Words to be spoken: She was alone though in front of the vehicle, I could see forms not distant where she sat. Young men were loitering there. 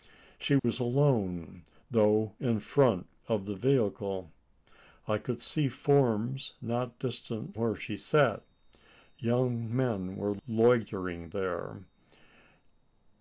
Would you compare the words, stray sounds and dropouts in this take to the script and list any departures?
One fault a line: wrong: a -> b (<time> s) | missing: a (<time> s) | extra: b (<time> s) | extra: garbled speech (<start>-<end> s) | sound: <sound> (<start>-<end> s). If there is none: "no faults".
sound: dropout (0.6-0.6 s)